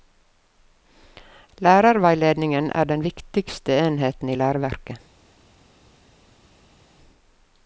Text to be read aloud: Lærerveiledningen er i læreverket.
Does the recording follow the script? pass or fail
fail